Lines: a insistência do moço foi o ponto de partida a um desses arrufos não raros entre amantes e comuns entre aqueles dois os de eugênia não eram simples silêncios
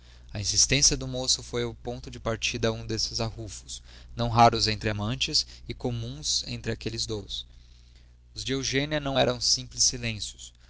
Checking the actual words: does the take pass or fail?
pass